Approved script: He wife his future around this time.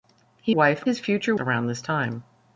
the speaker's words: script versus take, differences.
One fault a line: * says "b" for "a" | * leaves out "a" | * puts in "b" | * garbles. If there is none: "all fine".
all fine